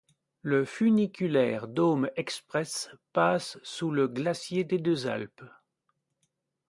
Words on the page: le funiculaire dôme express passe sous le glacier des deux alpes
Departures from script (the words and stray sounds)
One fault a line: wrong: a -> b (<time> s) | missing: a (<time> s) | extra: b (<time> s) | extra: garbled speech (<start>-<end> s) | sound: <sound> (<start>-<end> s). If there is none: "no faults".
no faults